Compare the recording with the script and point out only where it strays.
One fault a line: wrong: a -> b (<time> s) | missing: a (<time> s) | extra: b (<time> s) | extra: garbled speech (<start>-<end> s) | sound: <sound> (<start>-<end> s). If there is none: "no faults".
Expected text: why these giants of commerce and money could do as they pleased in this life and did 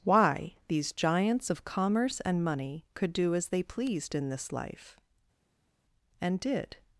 no faults